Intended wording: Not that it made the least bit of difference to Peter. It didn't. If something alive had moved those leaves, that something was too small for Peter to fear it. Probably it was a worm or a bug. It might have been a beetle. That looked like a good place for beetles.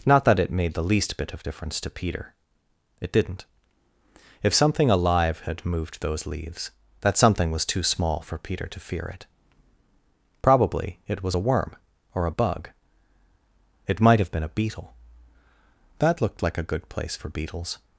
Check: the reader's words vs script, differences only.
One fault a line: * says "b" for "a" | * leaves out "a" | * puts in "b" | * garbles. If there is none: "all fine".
all fine